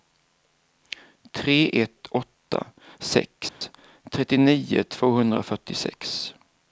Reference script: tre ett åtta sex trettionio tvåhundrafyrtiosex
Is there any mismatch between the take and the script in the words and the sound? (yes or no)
yes